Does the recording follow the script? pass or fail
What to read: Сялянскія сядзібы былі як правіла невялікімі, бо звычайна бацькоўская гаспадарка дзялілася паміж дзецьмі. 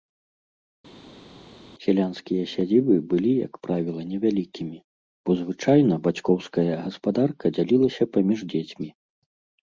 pass